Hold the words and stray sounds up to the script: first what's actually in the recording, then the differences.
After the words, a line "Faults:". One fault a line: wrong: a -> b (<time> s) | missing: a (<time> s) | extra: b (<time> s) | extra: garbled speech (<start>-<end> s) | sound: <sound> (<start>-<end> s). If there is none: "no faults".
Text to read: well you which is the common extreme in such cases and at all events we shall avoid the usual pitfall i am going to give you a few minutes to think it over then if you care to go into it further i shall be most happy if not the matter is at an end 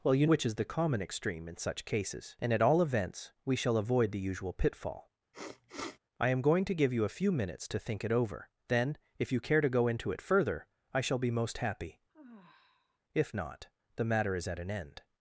well you which is the common extreme in such cases and at all events we shall avoid the usual pitfall i am going to give you a few minutes to think it over then if you care to go into it further i shall be most happy if not the matter is at an end
Faults:
sound: sniff (5.3-6.0 s)
sound: sigh (12.1-13.0 s)